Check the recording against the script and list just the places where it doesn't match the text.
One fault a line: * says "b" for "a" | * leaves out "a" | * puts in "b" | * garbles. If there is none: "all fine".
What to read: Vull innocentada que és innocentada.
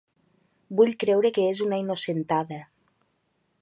* says "creure" for "innocentada"
* puts in "una"